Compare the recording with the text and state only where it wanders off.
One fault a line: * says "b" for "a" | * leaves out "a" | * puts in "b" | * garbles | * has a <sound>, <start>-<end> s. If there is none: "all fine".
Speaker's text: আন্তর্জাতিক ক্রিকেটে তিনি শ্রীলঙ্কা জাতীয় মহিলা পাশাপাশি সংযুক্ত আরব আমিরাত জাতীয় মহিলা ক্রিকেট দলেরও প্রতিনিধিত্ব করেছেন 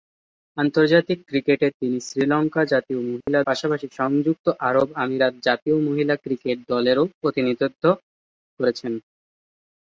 * has a dropout, 3.2-3.3 s